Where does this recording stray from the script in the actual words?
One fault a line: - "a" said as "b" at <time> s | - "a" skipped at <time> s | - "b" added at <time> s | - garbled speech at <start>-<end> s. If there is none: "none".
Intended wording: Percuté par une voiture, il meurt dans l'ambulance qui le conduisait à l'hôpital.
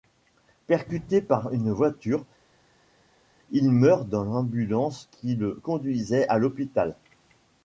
none